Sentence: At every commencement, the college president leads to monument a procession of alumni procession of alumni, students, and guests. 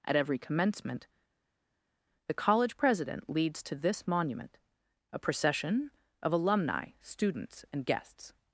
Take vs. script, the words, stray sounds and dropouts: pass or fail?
fail